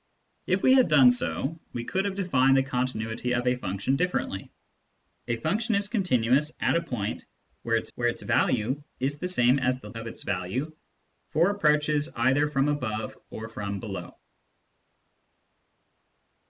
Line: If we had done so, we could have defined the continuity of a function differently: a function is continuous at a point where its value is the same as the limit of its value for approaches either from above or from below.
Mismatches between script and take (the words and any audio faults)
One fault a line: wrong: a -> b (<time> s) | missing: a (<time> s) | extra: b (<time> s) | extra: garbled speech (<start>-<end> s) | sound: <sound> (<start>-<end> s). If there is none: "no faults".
extra: where its (7.9 s)
missing: limit (9.9 s)